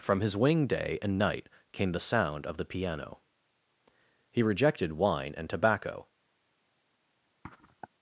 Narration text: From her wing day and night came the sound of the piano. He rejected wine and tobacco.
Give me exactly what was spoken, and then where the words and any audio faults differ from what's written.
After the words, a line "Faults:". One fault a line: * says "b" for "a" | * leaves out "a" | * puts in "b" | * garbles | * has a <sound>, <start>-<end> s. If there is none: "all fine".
From his wing day and night came the sound of the piano. He rejected wine and tobacco.
Faults:
* says "his" for "her"
* has a sniff, 7.4-7.9 s